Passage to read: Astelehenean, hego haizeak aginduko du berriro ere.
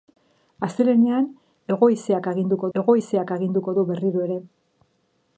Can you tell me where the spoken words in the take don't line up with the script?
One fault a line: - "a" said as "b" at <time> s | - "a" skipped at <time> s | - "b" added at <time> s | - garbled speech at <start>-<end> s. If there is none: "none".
- "hego haizeak aginduko" added at 2.8 s